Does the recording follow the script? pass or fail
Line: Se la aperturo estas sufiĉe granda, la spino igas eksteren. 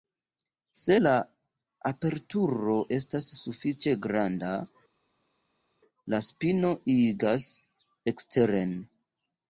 pass